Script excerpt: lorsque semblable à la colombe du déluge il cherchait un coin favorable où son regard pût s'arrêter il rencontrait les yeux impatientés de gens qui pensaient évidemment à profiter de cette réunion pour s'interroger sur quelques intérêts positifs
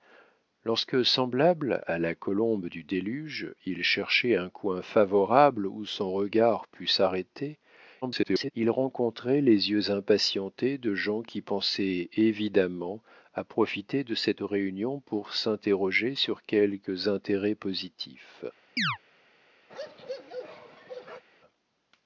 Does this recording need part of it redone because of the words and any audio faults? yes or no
yes